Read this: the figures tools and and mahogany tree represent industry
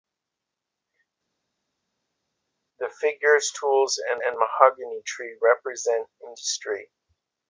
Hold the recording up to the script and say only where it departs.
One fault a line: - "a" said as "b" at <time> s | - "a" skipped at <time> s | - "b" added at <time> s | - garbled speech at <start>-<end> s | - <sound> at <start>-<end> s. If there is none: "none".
none